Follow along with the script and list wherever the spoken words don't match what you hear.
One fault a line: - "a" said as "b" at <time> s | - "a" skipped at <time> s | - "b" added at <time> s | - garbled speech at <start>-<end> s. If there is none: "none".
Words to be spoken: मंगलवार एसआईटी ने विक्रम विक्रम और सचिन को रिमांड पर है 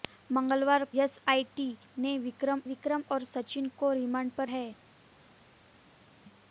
none